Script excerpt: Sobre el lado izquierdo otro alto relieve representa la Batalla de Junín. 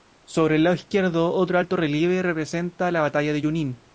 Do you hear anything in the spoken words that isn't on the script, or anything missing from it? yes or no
no